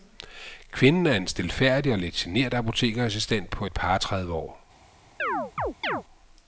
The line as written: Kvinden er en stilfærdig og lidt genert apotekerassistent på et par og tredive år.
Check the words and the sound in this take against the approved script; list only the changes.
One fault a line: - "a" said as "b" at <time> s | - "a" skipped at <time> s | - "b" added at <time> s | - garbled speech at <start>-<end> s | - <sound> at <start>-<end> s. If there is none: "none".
- chirp at 5.2-6.0 s